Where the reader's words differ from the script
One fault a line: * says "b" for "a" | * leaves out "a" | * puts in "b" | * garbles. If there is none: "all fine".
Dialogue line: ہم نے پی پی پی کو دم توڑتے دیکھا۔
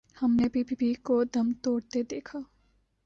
all fine